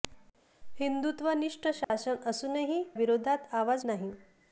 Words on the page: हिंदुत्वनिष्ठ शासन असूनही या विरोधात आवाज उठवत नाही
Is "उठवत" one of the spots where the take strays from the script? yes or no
yes